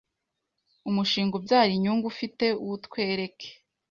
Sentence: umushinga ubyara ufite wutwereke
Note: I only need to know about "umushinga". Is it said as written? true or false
true